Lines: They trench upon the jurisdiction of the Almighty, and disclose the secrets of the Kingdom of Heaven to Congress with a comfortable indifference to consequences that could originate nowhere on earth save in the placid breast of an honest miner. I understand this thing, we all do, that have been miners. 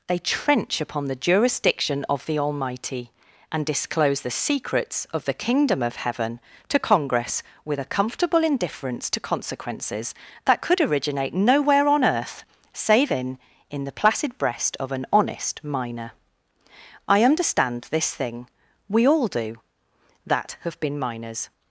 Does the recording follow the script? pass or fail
fail